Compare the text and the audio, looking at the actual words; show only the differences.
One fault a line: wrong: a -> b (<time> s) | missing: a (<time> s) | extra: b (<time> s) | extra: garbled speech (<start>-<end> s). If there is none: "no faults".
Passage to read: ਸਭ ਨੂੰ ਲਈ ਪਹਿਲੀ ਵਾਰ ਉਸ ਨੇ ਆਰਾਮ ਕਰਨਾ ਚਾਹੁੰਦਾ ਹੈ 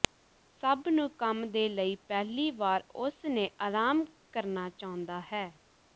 extra: ਕੰਮ ਦੇ (1.2 s)